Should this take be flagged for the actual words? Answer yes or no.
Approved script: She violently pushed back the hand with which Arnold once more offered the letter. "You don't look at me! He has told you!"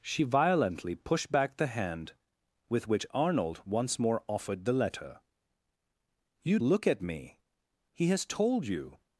yes